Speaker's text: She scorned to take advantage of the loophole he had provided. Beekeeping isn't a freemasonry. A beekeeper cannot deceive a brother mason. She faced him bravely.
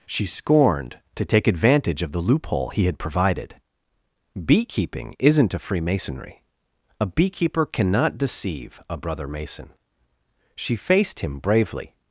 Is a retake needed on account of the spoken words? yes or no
no